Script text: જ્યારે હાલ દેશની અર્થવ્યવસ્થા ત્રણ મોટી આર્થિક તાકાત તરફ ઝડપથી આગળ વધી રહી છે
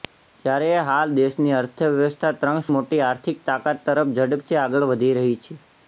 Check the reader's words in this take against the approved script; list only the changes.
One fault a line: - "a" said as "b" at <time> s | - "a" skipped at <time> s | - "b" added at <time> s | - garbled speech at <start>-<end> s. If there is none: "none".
none